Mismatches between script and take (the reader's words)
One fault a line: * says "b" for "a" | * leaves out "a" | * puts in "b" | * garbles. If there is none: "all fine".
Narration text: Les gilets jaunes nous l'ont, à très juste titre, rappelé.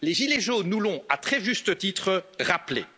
all fine